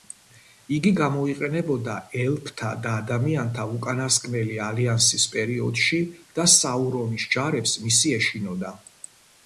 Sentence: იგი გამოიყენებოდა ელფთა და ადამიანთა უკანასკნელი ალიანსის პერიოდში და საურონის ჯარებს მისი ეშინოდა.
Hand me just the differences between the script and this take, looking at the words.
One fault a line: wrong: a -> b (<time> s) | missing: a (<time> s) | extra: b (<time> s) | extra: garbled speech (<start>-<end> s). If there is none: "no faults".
no faults